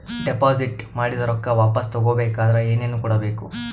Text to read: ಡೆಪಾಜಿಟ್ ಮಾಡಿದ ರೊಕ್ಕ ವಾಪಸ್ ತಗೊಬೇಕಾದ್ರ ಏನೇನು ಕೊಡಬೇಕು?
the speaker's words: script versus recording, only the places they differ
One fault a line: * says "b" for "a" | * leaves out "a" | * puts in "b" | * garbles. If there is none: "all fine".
all fine